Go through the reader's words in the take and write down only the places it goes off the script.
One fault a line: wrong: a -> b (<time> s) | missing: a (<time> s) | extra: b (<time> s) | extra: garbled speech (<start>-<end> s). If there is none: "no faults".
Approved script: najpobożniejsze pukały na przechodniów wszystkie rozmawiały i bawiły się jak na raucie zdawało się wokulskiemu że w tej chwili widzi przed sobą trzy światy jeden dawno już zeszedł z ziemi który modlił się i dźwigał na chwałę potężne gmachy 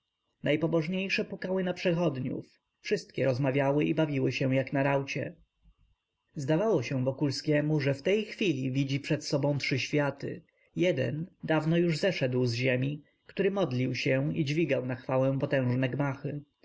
no faults